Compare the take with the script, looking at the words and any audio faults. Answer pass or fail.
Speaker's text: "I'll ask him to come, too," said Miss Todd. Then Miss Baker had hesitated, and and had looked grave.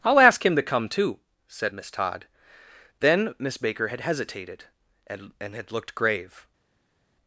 pass